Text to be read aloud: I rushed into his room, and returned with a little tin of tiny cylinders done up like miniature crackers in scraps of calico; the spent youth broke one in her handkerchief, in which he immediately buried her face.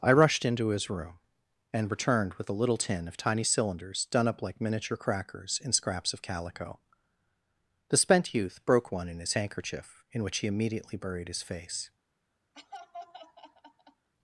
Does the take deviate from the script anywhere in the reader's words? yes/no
yes